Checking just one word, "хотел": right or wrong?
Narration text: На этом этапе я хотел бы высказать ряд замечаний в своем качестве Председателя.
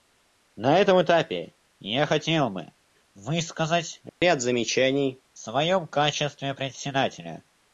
right